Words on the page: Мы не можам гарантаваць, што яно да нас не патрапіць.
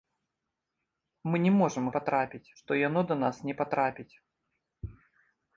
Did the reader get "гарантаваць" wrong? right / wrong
wrong